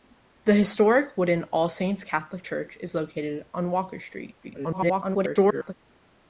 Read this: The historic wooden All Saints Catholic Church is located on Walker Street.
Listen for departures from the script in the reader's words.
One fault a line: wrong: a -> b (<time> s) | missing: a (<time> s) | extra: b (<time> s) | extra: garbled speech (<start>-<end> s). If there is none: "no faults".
extra: garbled speech (4.4-5.7 s)